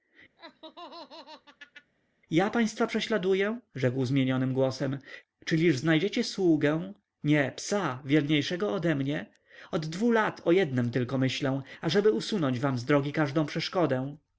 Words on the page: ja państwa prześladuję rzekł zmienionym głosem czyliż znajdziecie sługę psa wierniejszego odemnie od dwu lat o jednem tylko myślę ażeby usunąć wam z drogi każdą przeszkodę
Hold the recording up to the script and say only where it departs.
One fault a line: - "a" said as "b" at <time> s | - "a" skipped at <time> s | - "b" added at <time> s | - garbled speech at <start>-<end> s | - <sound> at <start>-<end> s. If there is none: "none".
- laugh at 0.4-1.9 s
- "nie" added at 7.2 s